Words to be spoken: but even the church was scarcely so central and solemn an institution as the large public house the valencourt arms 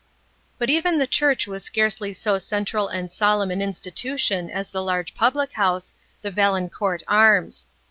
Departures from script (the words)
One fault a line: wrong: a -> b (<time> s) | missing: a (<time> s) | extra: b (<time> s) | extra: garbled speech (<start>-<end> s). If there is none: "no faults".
no faults